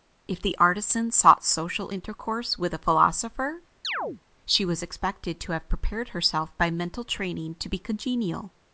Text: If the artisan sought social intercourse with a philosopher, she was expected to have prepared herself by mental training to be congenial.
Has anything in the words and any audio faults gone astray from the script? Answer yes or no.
yes